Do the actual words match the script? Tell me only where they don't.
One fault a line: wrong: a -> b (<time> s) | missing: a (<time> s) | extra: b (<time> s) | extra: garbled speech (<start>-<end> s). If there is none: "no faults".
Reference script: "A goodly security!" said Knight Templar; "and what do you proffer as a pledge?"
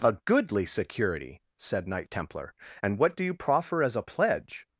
no faults